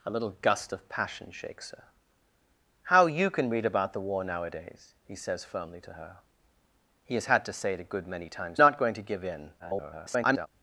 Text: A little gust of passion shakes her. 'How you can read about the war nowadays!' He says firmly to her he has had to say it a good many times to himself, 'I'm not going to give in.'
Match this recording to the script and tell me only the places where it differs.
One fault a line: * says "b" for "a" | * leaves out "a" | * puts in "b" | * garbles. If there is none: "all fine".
* leaves out "to himself I'm"
* garbles